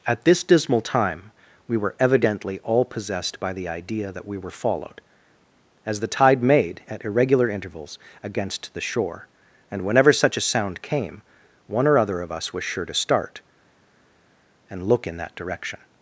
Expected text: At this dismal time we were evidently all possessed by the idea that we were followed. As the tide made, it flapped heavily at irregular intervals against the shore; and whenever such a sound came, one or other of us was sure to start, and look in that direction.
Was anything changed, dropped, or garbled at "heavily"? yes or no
yes